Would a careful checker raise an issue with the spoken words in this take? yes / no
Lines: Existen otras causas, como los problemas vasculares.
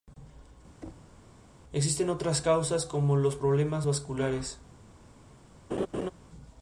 no